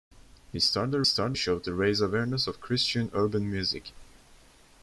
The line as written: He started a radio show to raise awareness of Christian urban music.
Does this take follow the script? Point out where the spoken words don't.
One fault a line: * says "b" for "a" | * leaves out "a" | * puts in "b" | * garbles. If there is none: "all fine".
* says "started" for "radio"